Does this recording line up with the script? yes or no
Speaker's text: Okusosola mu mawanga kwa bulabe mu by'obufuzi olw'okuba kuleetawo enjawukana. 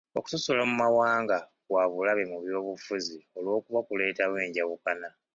yes